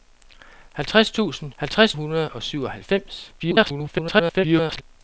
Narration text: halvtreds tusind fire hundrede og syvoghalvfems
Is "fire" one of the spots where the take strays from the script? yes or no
yes